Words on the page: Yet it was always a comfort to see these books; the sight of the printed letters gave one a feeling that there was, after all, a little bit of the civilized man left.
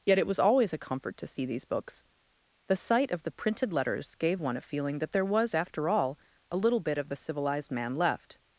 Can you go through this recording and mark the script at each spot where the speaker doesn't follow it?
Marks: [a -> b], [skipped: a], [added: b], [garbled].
Yet it was always a comfort to see these books; the sight of the printed letters gave one a feeling that there was, after all, a little bit of the civilized man left.